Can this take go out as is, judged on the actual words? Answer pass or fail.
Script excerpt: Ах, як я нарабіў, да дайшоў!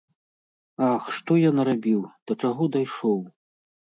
fail